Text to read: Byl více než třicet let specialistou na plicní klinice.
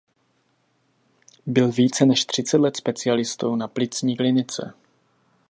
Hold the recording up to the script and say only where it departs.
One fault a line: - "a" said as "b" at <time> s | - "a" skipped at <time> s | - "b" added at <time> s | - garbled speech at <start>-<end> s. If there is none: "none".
none